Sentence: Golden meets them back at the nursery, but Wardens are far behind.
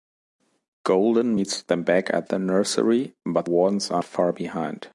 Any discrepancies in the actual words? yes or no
no